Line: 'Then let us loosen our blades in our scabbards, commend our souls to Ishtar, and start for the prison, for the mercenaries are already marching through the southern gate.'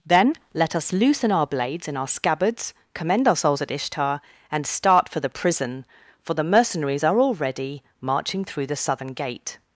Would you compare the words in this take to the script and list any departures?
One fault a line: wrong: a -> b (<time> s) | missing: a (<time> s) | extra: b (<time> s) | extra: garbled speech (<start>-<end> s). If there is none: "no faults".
wrong: to -> at (3.6 s)